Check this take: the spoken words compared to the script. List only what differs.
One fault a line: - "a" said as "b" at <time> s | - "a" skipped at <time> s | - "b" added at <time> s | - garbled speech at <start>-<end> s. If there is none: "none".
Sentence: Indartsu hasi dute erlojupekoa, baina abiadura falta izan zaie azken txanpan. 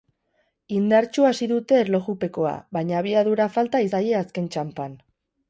- "izan" skipped at 3.9 s